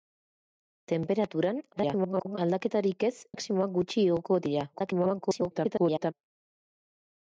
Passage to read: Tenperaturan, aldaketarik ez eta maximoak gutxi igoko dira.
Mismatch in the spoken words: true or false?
true